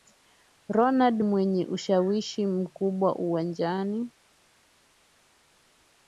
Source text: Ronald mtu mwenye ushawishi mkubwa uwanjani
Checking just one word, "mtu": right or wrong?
wrong